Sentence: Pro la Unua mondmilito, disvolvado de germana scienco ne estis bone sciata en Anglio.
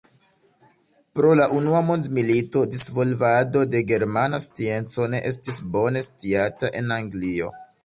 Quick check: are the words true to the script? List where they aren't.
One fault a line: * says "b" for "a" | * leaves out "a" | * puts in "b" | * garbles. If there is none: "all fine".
all fine